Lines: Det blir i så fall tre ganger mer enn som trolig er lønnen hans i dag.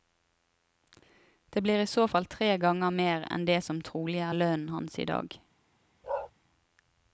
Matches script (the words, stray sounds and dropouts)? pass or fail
fail